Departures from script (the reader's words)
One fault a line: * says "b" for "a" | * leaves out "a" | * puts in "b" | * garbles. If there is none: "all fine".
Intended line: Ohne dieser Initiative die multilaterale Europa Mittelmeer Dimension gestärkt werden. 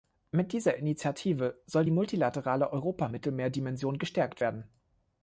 * says "Mit" for "Ohne"
* puts in "soll"